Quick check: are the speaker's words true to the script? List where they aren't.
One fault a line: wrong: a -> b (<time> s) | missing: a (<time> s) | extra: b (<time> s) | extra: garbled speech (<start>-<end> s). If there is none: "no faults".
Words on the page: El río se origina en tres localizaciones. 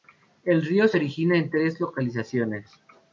no faults